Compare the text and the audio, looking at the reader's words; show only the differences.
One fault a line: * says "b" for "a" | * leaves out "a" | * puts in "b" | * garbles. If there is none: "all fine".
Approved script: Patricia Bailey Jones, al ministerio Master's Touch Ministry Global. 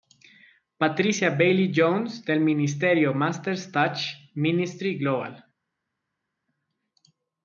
* says "del" for "al"